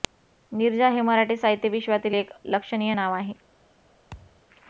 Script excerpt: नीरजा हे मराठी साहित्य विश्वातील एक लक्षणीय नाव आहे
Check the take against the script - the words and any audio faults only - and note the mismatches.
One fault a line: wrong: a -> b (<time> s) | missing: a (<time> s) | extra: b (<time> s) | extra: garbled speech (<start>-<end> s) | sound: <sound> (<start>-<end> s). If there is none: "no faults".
sound: thud (4.1-4.4 s)